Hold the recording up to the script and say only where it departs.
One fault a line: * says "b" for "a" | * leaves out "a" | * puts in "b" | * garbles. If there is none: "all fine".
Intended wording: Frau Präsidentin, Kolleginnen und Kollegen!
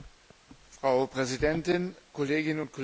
all fine